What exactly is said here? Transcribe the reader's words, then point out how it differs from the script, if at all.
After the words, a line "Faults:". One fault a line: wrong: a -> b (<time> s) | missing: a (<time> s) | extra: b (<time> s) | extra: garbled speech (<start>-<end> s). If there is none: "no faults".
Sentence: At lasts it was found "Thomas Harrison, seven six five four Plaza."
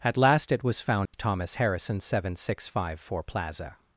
At last it was found "Thomas Harrison, seven six five four Plaza."
Faults:
wrong: lasts -> last (0.2 s)